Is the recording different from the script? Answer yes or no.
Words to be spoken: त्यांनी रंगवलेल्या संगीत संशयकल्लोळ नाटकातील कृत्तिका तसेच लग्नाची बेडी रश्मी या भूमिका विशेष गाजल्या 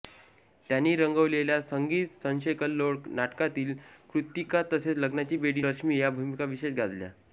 no